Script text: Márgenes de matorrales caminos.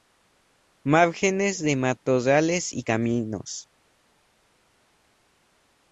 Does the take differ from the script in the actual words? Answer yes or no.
yes